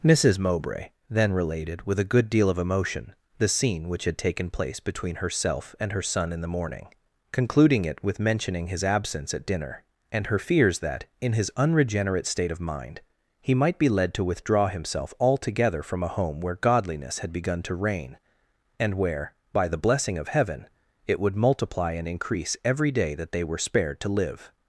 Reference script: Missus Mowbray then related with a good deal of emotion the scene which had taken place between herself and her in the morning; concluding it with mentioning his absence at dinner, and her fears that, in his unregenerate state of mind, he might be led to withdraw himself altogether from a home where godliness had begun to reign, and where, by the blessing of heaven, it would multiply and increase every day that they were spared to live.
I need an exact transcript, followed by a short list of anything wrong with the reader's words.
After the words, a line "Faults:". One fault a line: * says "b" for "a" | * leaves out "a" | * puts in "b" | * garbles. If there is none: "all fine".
Missus Mowbray then related with a good deal of emotion the scene which had taken place between herself and her son in the morning; concluding it with mentioning his absence at dinner, and her fears that, in his unregenerate state of mind, he might be led to withdraw himself altogether from a home where godliness had begun to reign, and where, by the blessing of heaven, it would multiply and increase every day that they were spared to live.
Faults:
* puts in "son"